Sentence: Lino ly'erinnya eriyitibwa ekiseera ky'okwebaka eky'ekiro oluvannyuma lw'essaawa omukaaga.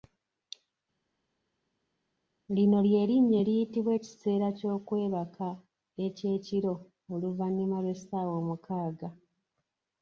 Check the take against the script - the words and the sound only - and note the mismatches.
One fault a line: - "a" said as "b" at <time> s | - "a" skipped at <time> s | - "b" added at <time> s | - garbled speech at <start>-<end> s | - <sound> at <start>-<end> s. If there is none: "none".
none